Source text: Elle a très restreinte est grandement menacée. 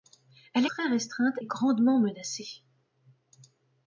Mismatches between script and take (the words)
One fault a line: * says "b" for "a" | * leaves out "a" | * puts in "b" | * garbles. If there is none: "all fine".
all fine